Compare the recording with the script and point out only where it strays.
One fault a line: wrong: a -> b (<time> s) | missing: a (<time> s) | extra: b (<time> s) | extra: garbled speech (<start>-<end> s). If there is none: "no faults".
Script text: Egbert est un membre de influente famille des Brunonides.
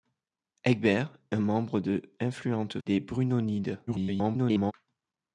missing: est (1.1 s)
missing: famille (2.8 s)
extra: garbled speech (3.9-4.7 s)